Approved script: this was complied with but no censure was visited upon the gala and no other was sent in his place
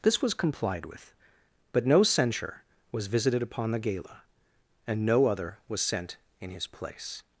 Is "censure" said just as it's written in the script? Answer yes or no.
yes